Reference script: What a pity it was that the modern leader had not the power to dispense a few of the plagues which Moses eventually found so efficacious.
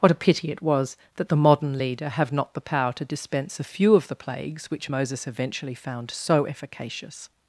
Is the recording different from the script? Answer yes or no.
yes